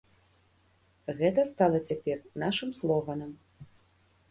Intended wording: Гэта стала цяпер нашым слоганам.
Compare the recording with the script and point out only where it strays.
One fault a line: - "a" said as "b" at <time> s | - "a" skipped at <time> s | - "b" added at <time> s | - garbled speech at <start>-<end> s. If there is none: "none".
none